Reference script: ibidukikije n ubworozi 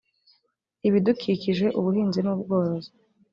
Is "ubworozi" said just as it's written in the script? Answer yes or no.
yes